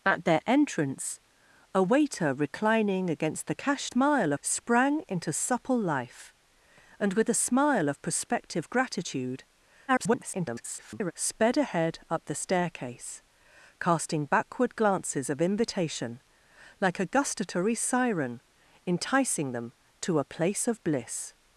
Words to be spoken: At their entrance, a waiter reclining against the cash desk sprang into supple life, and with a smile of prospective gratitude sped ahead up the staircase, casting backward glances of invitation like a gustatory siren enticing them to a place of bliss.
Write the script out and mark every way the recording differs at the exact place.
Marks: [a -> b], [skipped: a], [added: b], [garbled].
At their entrance, a waiter reclining against the cash [desk -> smile] sprang into supple life, and with a smile of prospective gratitude [garbled] sped ahead up the staircase, casting backward glances of invitation like a gustatory siren enticing them to a place of bliss.